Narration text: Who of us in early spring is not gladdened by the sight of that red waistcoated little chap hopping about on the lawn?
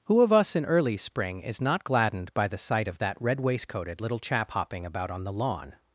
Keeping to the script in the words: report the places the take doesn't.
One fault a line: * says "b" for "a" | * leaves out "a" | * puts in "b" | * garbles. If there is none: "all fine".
all fine